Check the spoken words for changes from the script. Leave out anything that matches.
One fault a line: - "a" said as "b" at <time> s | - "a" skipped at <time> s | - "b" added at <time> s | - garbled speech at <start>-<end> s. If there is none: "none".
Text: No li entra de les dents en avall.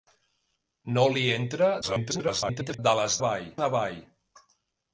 - garbled speech at 1.8-2.8 s
- "dents" said as "avall" at 3.2 s